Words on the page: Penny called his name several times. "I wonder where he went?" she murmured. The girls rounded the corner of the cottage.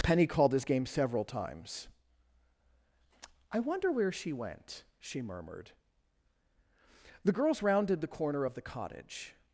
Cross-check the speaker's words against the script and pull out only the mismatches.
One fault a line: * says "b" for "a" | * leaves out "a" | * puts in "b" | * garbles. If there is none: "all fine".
* says "game" for "name"
* says "she" for "he"